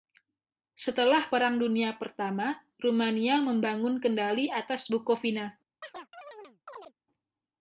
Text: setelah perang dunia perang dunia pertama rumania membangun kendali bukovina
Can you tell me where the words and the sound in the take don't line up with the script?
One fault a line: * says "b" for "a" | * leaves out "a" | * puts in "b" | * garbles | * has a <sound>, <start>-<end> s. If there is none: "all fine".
* leaves out "perang dunia"
* puts in "atas"
* has a chirp, 5.8-6.9 s